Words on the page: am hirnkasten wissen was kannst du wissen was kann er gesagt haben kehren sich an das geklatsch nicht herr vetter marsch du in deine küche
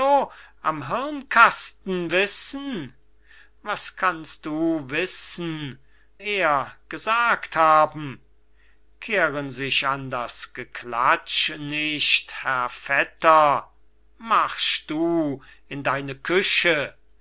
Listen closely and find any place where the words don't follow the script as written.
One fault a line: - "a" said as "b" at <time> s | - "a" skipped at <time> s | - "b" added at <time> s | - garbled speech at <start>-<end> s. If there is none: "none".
- "was kann" skipped at 5.8 s